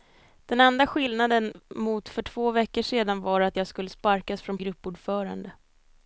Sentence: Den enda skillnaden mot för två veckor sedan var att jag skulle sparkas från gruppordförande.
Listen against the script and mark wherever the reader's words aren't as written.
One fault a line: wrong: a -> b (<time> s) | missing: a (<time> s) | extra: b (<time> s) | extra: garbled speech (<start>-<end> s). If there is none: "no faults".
no faults